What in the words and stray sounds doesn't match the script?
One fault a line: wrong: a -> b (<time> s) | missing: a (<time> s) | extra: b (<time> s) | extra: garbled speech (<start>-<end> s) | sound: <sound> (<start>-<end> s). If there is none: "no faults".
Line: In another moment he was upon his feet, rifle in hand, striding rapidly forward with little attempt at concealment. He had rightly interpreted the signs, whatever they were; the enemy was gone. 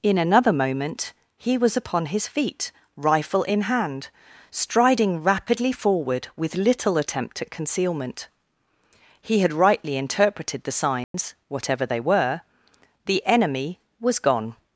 sound: dropout (11.0-11.1 s)